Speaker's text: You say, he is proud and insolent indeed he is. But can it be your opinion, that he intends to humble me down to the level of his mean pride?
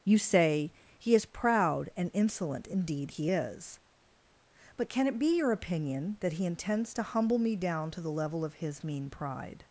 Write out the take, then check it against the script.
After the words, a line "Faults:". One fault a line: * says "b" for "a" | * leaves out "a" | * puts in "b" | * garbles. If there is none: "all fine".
You say, he is proud and insolent indeed he is. But can it be your opinion, that he intends to humble me down to the level of his mean pride?
Faults:
all fine